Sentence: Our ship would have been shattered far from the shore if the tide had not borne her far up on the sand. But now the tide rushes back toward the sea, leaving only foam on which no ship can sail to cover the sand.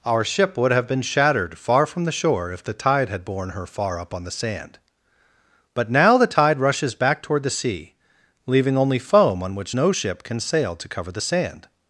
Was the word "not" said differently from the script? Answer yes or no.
yes